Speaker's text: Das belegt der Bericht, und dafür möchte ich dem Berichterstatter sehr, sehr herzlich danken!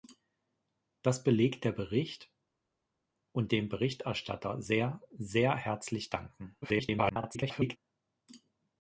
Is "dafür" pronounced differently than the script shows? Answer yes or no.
yes